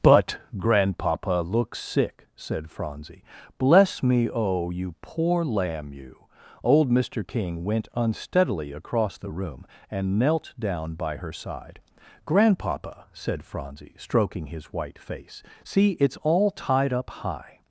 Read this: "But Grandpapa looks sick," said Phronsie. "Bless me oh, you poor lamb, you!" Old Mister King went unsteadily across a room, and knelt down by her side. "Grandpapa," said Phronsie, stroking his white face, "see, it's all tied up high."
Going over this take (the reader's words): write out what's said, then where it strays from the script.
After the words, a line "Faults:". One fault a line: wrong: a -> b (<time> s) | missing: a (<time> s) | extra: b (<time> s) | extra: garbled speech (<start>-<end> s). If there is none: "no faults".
"But Grandpapa looks sick," said Phronsie. "Bless me oh, you poor lamb, you!" Old Mister King went unsteadily across the room, and knelt down by her side. "Grandpapa," said Phronsie, stroking his white face, "see, it's all tied up high."
Faults:
wrong: a -> the (9.2 s)